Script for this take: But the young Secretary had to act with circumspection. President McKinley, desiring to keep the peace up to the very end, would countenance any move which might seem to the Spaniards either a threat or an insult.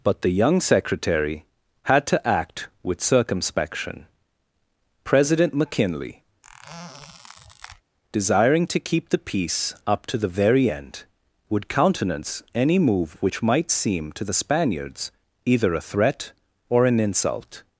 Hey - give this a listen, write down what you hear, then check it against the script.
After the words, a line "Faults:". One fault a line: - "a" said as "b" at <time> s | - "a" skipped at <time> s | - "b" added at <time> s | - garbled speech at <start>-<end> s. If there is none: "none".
But the young Secretary had to act with circumspection. President McKinley, desiring to keep the peace up to the very end, would countenance any move which might seem to the Spaniards either a threat or an insult.
Faults:
none